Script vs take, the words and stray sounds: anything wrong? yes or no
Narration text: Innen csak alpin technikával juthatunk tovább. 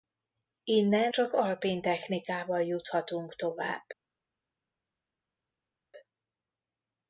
no